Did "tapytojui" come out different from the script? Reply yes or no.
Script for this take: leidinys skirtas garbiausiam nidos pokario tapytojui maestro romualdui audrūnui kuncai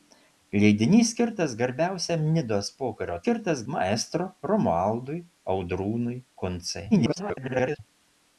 yes